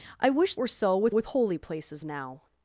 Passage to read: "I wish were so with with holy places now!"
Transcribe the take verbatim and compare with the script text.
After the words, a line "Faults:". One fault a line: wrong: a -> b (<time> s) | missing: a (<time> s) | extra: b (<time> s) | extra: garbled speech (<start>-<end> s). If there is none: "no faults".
"I wish were so with with holy places now!"
Faults:
no faults